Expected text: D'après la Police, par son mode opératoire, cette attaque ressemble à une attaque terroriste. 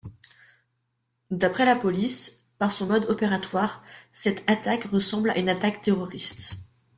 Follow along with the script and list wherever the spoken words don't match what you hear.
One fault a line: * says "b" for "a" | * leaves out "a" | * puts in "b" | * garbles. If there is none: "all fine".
all fine